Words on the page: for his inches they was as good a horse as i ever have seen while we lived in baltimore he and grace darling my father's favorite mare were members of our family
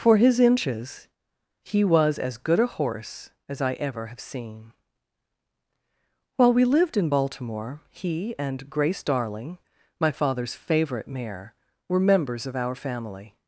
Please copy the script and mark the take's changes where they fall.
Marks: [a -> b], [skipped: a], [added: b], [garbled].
for his inches [they -> he] was as good a horse as i ever have seen while we lived in baltimore he and grace darling my father's favorite mare were members of our family